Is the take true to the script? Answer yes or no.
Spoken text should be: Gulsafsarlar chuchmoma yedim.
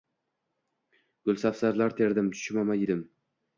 no